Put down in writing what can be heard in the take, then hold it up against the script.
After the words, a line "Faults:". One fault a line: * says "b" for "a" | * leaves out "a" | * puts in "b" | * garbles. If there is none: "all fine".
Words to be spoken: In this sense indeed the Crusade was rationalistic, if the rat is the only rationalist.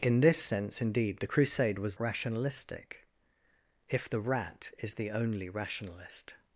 In this sense indeed the Crusade was rationalistic, if the rat is the only rationalist.
Faults:
all fine